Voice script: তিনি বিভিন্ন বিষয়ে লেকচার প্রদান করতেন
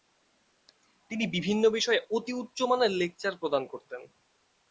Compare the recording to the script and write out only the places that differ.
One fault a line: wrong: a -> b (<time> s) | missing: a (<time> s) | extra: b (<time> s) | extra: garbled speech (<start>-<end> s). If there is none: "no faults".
extra: অতি উচ্চমানের (2.1 s)